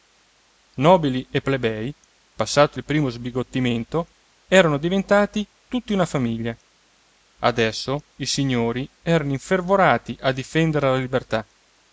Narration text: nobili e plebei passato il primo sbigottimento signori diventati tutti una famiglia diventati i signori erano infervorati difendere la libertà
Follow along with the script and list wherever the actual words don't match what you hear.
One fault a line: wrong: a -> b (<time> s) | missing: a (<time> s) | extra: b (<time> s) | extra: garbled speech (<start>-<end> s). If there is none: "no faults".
wrong: signori -> erano (4.5 s)
wrong: diventati -> adesso (7.4 s)
extra: a (10.2 s)